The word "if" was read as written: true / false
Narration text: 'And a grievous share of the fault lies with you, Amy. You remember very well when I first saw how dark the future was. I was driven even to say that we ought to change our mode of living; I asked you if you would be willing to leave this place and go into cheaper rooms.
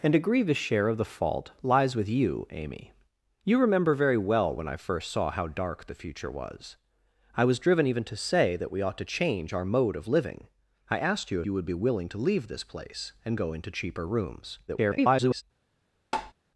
false